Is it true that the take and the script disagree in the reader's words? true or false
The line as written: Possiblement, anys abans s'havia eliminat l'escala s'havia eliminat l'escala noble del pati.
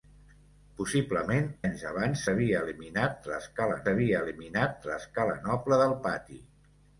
false